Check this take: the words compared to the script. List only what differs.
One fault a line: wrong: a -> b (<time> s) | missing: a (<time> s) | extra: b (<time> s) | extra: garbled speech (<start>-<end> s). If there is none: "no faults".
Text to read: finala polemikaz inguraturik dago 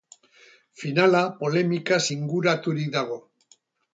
no faults